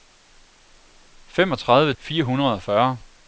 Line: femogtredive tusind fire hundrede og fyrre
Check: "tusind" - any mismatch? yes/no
yes